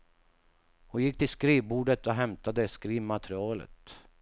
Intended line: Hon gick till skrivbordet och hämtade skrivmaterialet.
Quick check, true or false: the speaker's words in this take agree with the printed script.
true